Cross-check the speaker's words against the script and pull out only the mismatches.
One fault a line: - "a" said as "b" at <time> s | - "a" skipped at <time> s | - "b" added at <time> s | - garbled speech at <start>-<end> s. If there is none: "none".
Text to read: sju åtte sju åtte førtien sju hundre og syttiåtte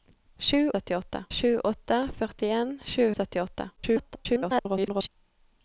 - "åtte" said as "syttiåtte" at 0.8 s
- "hundre" skipped at 3.1 s
- garbled speech at 3.8-5.1 s